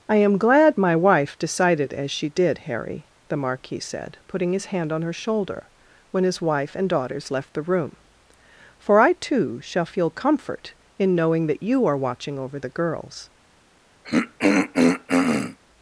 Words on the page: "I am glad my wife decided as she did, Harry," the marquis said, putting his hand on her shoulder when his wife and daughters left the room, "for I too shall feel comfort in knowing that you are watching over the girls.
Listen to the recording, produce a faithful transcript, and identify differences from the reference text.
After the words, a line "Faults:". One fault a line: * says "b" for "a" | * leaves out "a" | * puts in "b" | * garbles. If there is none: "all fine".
"I am glad my wife decided as she did, Harry," the marquis said, putting his hand on her shoulder when his wife and daughters left the room, "for I too shall feel comfort in knowing that you are watching over the girls.
Faults:
all fine